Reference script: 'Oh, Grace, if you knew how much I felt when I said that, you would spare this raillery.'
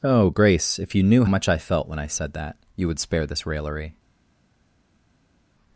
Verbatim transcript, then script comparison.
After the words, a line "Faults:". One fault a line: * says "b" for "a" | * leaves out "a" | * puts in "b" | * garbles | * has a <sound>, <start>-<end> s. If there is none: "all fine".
'Oh, Grace, if you knew much I felt when I said that, you would spare this raillery.'
Faults:
* leaves out "how"